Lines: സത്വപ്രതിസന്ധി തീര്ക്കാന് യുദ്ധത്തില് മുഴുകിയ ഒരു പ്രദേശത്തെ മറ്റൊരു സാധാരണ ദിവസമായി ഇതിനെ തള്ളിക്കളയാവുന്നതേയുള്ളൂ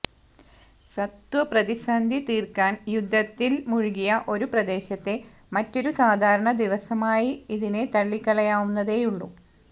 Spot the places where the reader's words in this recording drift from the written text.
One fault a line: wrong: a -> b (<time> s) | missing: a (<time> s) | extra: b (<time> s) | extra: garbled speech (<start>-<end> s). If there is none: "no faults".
no faults